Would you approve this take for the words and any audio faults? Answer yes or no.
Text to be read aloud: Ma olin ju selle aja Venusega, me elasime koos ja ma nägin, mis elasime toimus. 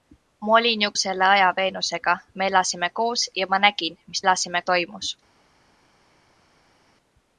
yes